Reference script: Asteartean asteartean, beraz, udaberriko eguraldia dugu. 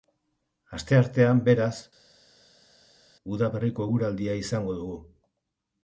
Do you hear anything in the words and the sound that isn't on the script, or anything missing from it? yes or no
yes